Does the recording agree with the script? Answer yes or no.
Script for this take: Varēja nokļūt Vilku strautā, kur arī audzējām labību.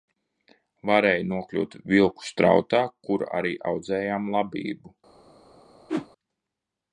yes